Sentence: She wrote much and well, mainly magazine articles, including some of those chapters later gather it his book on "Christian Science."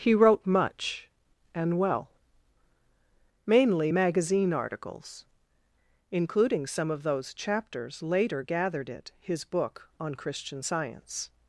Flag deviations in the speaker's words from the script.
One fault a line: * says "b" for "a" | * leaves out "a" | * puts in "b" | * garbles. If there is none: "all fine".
* says "He" for "She"
* says "gathered" for "gather"